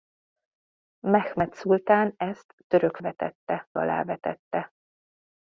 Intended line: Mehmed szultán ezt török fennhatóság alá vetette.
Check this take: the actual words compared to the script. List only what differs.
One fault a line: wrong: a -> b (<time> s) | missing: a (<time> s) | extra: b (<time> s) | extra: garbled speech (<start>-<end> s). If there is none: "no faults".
wrong: fennhatóság -> vetette (3.0 s)